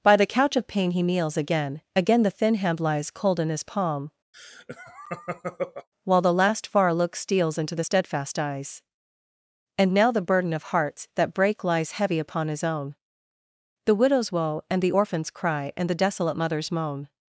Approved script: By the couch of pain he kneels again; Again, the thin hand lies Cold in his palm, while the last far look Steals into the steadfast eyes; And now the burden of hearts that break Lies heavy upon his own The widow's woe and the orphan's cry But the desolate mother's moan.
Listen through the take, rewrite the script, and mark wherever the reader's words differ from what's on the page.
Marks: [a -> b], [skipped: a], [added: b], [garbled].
By the couch of pain he kneels again; Again, the thin hand lies Cold in his palm, while the last far look Steals into the steadfast eyes; And now the burden of hearts that break Lies heavy upon his own The widow's woe and the orphan's cry [But -> And] the desolate mother's moan.